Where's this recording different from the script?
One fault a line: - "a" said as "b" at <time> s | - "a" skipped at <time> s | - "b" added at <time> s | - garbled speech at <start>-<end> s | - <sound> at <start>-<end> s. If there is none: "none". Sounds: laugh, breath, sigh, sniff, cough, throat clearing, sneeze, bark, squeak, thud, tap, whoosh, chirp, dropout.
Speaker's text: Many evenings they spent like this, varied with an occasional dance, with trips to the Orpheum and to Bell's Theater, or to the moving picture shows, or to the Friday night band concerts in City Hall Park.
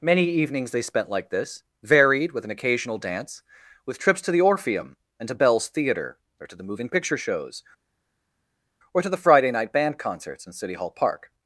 none